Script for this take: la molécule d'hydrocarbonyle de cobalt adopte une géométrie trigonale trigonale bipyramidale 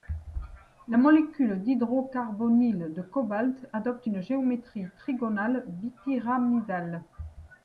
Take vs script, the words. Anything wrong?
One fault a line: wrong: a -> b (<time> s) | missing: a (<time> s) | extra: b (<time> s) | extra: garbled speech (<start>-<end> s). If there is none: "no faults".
missing: trigonale (5.6 s)